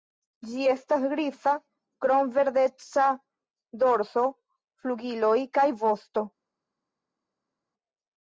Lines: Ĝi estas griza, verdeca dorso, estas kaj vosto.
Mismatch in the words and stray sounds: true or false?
true